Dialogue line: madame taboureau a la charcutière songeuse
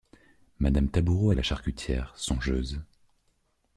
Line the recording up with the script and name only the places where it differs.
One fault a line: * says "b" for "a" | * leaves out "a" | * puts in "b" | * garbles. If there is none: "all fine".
all fine